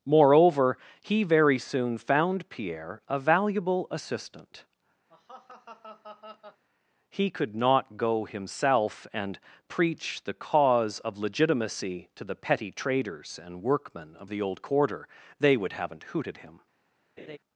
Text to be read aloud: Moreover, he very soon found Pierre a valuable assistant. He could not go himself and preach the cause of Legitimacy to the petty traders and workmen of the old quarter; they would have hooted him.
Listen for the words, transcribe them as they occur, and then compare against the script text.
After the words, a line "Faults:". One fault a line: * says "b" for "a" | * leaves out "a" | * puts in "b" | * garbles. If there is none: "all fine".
Moreover, he very soon found Pierre a valuable assistant. He could not go himself and preach the cause of Legitimacy to the petty traders and workmen of the old quarter; they would haven't hooted him.
Faults:
* says "haven't" for "have"